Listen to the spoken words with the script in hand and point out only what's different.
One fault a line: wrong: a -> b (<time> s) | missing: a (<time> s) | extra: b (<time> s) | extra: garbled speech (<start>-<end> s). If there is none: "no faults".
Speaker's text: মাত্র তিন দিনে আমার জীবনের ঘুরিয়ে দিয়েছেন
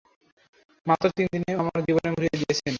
no faults